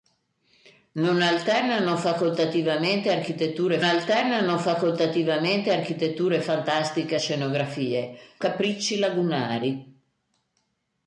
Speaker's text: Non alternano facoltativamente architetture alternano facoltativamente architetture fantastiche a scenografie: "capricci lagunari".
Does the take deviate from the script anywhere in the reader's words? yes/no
no